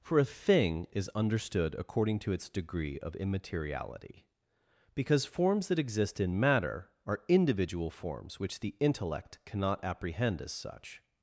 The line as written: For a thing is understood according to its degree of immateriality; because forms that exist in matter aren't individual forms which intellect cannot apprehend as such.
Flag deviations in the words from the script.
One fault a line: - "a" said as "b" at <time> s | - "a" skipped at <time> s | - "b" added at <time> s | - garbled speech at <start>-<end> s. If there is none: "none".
- "aren't" said as "are" at 7.1 s
- "the" added at 8.6 s